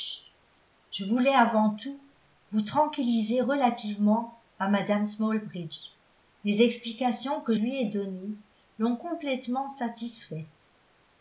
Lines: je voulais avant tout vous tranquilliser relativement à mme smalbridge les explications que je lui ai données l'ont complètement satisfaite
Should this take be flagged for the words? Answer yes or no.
yes